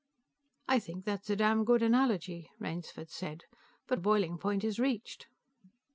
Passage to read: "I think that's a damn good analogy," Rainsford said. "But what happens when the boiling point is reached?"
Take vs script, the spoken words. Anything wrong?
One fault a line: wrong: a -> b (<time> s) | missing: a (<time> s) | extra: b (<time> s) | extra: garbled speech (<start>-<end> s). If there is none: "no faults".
missing: what happens when (4.0 s)